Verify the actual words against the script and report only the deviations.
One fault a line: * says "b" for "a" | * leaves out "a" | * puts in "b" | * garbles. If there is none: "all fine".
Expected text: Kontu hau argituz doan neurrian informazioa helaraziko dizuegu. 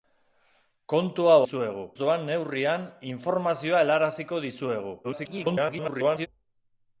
* says "dizuegu" for "argituz"
* garbles